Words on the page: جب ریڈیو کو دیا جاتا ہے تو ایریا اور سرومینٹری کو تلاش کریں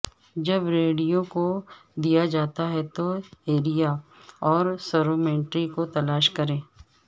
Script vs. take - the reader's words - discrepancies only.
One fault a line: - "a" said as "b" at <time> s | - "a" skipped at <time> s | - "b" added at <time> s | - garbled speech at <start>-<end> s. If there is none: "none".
none